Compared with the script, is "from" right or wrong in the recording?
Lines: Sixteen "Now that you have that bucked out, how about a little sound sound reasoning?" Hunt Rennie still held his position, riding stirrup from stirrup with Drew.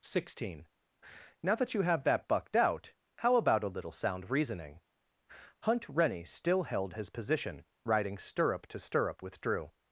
wrong